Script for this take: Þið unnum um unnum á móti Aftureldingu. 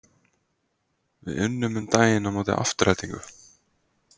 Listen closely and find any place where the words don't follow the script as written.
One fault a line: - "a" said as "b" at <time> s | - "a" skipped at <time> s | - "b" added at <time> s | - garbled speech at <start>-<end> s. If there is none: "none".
- "Þið" said as "Við" at 1.3 s
- "unnum" said as "daginn" at 2.0 s